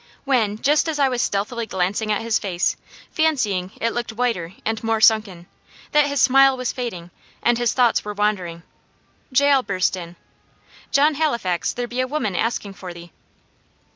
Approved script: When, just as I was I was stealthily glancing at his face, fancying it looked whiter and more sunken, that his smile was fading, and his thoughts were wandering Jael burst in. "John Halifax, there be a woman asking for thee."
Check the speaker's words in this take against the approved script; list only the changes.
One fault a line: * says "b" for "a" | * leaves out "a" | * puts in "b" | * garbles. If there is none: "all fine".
* leaves out "I was"